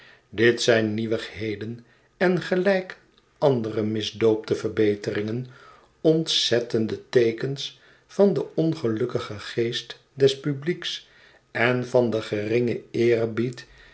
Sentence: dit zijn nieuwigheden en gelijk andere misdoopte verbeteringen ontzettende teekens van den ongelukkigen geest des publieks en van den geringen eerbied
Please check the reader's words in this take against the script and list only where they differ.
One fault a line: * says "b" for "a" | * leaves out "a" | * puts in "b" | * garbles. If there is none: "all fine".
all fine